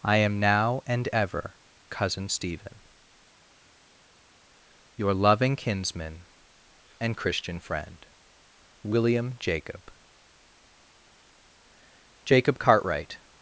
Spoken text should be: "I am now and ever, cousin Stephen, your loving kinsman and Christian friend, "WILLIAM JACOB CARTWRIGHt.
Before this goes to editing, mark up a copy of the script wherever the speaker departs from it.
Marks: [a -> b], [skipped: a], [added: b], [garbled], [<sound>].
"I am now and ever, cousin Stephen, your loving kinsman and Christian friend, "WILLIAM JACOB [added: JACOB] CARTWRIGHt.